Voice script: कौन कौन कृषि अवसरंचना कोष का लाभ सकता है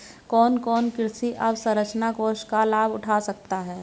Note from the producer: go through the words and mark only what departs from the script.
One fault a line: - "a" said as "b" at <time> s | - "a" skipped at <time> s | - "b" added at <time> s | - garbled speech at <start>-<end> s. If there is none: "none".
- "उठा" added at 2.9 s